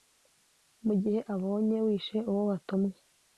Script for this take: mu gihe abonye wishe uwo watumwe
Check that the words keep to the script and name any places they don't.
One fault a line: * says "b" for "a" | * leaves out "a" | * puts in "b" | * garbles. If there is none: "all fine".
all fine